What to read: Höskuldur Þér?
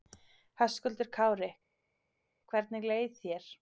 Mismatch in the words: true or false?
true